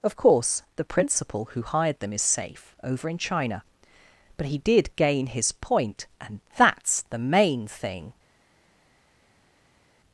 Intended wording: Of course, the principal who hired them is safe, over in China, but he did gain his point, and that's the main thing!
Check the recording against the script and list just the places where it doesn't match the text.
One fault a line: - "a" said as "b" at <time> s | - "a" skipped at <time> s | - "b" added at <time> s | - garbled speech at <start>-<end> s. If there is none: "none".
none